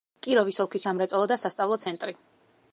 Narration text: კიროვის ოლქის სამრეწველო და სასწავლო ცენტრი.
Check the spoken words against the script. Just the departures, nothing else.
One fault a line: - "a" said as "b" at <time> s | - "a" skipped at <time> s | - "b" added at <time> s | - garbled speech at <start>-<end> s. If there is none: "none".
none